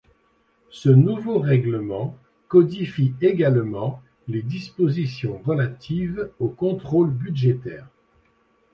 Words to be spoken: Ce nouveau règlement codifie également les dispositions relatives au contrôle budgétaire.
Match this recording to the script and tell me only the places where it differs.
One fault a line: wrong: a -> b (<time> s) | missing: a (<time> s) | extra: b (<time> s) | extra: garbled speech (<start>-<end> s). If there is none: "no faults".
no faults